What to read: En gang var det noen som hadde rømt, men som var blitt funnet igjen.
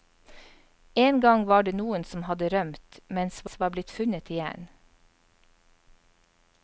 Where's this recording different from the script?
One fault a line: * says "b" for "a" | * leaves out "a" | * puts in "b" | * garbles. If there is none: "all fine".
* puts in "som"